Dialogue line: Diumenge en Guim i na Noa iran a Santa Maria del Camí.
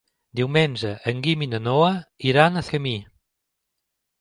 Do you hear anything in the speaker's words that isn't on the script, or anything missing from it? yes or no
yes